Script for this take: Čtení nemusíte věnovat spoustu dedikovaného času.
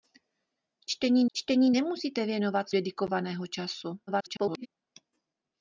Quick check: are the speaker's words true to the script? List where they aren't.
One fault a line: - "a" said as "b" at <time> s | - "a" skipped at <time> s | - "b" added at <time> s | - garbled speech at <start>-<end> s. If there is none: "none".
- "čtení" added at 1.3 s
- "spoustu" skipped at 2.7 s
- garbled speech at 4.1-4.7 s